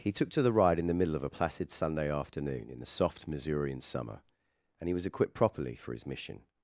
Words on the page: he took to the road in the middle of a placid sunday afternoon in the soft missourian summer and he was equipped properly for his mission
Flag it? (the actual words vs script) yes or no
yes